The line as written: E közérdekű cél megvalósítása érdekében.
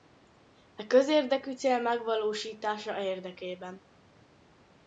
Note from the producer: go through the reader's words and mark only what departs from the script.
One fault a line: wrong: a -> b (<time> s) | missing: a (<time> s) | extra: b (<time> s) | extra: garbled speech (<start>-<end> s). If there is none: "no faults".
no faults